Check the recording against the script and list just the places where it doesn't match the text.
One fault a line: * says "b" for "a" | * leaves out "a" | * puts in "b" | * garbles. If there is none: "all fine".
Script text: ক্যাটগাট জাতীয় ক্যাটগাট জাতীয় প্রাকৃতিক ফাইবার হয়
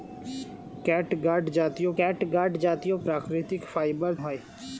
all fine